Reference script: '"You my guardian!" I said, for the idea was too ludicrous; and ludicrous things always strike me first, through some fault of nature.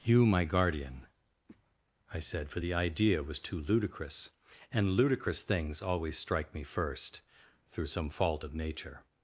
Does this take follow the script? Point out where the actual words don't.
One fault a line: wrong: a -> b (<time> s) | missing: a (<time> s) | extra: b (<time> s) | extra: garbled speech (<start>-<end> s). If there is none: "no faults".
no faults